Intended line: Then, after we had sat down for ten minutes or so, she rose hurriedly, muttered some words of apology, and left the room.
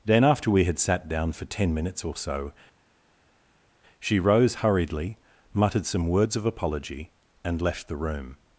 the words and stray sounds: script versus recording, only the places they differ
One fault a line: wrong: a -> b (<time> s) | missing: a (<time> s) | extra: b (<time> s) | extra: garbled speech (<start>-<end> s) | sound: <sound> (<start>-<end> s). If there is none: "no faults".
no faults